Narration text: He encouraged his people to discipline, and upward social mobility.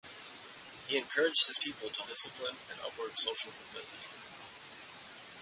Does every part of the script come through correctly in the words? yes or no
yes